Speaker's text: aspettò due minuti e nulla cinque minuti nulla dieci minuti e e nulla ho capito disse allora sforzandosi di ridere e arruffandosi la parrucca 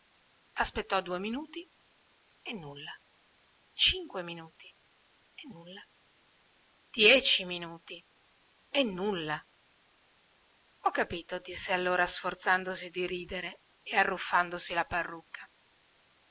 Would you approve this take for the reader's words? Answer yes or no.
no